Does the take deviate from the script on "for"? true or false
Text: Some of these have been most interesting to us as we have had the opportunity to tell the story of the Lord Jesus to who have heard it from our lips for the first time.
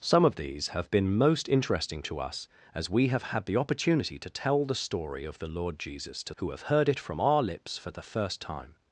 false